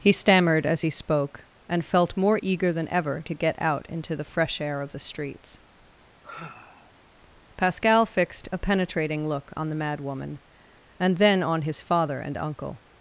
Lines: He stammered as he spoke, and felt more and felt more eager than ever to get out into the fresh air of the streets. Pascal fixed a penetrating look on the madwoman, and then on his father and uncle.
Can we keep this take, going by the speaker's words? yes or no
no